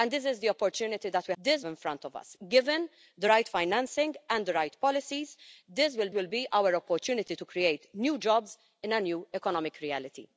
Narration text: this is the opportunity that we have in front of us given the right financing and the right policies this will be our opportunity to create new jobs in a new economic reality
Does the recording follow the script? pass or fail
fail